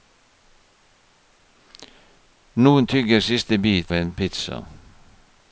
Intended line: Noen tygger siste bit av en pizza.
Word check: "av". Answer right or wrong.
wrong